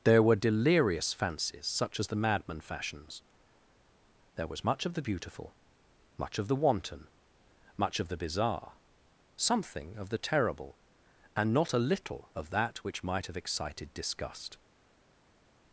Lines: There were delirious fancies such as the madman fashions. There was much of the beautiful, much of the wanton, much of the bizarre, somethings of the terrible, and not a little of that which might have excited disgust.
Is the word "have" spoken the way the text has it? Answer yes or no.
yes